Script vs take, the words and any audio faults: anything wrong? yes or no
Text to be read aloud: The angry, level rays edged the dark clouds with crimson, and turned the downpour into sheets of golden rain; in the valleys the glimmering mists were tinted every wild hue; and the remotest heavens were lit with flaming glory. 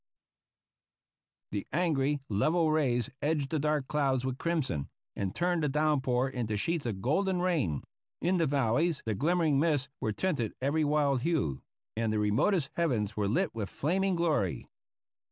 no